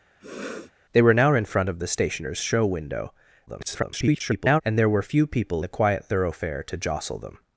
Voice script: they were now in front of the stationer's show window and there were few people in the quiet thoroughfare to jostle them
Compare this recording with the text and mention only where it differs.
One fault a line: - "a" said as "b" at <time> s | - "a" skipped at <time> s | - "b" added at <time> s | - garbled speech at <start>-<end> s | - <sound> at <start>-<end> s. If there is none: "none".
- sniff at 0.2-0.7 s
- garbled speech at 3.5-4.6 s
- "in" skipped at 5.6 s